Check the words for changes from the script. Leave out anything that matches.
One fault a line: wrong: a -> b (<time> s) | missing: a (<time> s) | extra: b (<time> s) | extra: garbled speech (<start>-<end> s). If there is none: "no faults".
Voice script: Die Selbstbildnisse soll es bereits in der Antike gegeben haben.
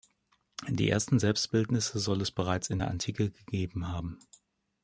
extra: ersten (0.9 s)